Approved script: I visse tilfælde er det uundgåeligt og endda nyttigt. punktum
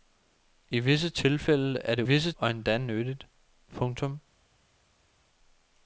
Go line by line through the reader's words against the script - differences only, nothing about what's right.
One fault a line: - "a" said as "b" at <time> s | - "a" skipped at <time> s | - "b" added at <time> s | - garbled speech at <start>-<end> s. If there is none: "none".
- "uundgåeligt" said as "visse" at 2.0 s